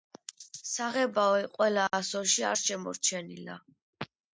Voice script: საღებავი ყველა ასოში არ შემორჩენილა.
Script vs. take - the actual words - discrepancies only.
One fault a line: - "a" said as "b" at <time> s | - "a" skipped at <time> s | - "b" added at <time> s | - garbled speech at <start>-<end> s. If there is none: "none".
none